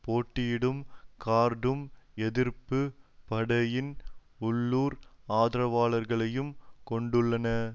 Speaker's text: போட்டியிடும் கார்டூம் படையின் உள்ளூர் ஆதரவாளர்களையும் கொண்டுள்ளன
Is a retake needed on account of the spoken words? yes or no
yes